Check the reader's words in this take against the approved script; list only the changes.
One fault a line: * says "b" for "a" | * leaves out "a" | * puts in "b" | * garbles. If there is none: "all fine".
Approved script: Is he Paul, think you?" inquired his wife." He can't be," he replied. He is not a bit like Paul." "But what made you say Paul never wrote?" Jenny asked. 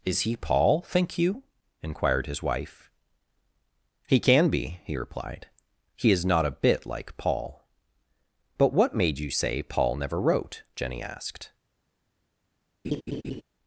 * says "can" for "can't"